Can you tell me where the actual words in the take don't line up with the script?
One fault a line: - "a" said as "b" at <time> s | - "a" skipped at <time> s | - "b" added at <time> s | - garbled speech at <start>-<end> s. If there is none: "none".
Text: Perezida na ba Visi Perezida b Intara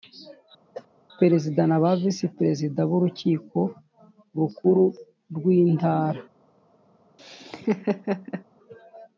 - "Urukiko Rukuru rw" added at 3.0 s